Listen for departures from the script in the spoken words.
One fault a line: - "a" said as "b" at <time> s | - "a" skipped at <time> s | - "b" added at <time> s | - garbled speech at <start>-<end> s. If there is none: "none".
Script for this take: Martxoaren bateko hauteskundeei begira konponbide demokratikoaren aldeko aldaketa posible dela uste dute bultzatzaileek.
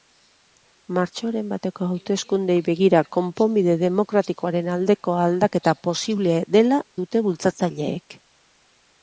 - "uste" skipped at 6.8 s